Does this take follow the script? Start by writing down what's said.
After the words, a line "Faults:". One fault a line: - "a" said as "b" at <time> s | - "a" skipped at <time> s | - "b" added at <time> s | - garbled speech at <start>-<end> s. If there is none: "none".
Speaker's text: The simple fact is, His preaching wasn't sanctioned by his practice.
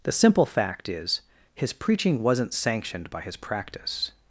The simple fact is, His preaching wasn't sanctioned by his practice.
Faults:
none